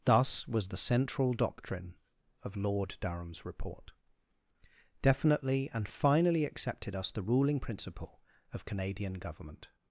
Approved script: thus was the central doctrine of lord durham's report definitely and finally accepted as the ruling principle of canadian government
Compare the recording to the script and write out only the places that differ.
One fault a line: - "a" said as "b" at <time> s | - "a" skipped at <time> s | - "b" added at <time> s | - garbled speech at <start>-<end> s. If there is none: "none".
- "as" said as "us" at 7.0 s